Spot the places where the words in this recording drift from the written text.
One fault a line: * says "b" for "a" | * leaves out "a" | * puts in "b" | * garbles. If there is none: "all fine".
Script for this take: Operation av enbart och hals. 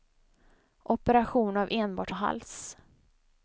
all fine